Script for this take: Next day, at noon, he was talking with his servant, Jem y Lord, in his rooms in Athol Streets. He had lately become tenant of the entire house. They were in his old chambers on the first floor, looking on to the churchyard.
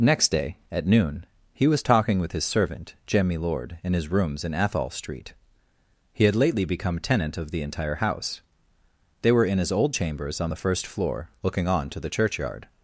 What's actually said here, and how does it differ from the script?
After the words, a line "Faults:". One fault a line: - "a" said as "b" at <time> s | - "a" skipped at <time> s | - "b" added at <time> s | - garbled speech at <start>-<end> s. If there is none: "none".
Next day, at noon, he was talking with his servant, Jem y Lord, in his rooms in Athol Street. He had lately become tenant of the entire house. They were in his old chambers on the first floor, looking on to the churchyard.
Faults:
- "Streets" said as "Street" at 4.9 s